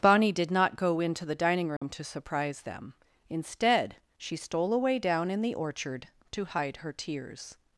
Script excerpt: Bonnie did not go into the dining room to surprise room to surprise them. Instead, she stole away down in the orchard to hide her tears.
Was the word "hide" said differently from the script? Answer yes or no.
no